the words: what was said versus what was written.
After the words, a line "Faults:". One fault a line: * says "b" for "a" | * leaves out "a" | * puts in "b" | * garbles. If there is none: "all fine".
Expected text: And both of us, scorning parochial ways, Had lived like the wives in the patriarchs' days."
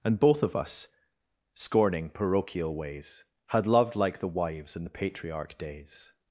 And both of us, scorning parochial ways, Had loved like the wives in the patriarch' days."
Faults:
* says "loved" for "lived"
* says "patriarch" for "patriarchs"